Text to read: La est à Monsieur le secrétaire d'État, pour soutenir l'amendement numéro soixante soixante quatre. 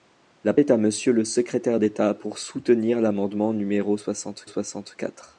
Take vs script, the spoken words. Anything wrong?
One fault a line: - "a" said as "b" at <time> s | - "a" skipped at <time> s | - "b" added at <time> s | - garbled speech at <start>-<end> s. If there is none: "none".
none